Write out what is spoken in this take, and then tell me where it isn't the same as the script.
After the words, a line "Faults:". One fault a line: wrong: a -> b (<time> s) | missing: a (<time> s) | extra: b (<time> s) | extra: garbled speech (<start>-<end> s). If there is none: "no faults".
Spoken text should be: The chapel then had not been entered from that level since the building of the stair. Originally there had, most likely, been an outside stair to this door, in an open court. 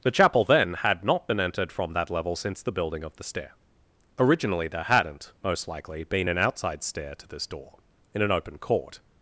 The chapel then had not been entered from that level since the building of the stair. Originally there hadn't, most likely, been an outside stair to this door, in an open court.
Faults:
wrong: had -> hadn't (4.8 s)